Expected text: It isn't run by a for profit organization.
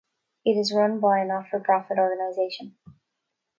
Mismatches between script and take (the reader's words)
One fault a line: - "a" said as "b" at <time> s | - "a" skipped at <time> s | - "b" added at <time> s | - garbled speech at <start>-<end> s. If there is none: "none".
- "isn't" said as "is" at 0.5 s
- "not" added at 1.2 s